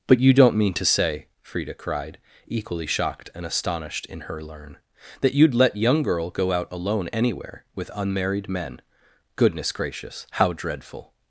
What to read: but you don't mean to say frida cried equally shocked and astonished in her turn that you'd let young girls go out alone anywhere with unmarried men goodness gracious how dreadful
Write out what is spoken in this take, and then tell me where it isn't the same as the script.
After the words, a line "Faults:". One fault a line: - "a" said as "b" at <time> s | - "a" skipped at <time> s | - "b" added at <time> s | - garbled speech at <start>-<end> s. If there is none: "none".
but you don't mean to say frida cried equally shocked and astonished in her learn that you'd let young girl go out alone anywhere with unmarried men goodness gracious how dreadful
Faults:
- "turn" said as "learn" at 4.4 s
- "girls" said as "girl" at 6.0 s